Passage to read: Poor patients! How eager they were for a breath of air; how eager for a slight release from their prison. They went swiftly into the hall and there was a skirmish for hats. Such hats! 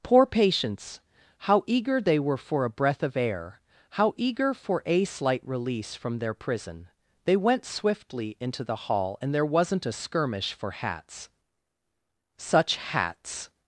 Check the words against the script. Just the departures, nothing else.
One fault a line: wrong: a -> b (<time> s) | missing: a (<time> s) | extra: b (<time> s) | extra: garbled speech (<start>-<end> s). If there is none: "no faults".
wrong: was -> wasn't (9.4 s)